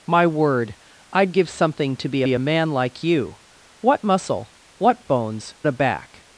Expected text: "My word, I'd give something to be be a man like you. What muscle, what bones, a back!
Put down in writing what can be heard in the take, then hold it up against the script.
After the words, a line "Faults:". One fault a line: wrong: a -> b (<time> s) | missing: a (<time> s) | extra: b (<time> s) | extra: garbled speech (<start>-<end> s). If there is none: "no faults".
"My word, I'd give something to be be a man like you. What muscle, what bones, a back!
Faults:
no faults